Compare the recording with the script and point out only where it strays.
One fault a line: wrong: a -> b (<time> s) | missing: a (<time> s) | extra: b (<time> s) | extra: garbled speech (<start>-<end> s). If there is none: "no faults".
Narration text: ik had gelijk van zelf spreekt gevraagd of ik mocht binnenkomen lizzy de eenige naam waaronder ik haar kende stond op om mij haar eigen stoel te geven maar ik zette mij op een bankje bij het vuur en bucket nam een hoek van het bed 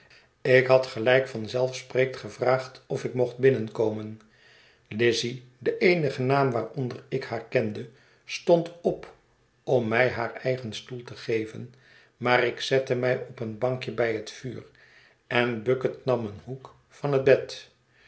no faults